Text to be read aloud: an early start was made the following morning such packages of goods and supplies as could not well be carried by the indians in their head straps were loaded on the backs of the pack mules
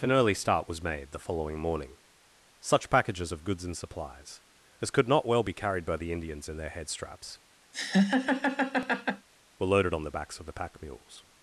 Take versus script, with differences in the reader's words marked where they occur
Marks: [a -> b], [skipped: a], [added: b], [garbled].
an early start was made the following morning such packages of goods and supplies as could not well be carried by the indians in their head straps were loaded on the backs of the pack mules